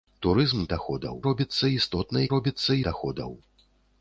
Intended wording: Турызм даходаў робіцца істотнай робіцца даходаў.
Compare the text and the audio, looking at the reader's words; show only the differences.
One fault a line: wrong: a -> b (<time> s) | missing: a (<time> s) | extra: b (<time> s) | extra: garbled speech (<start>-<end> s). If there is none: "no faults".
no faults